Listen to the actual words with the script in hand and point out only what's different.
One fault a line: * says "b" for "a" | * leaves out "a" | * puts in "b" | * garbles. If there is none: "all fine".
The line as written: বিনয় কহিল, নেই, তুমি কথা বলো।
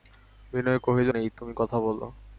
all fine